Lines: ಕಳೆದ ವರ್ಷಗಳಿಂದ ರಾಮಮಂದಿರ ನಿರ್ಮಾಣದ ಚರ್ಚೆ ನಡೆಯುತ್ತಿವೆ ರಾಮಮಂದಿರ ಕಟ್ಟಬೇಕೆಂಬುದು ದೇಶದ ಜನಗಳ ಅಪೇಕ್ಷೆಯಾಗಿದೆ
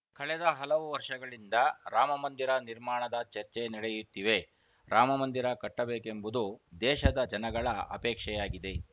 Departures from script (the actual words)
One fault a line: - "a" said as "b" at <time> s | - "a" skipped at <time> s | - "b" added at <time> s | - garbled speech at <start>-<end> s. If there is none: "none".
- "ಹಲವು" added at 0.6 s